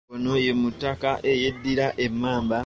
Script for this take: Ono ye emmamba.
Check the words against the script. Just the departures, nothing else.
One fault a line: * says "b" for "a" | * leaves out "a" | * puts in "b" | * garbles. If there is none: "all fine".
* puts in "mutaka eyeddira"